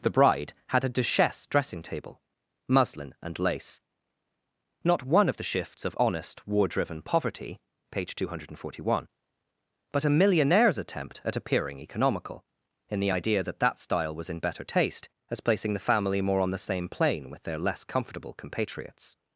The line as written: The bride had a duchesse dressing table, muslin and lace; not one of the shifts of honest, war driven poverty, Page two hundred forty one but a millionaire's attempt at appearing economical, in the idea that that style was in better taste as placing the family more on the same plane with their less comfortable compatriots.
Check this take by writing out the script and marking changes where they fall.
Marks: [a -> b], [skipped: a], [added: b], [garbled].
The bride had a duchesse dressing table, muslin and lace; not one of the shifts of honest, war driven poverty, Page two hundred forty one but a millionaire's attempt at appearing economical, in the idea that that style was in better taste as placing the family more on the same plane with their less comfortable compatriots.